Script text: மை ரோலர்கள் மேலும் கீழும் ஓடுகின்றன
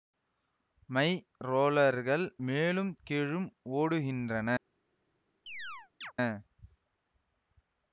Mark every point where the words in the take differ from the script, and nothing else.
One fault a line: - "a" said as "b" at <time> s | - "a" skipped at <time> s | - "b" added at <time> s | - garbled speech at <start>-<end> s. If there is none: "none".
none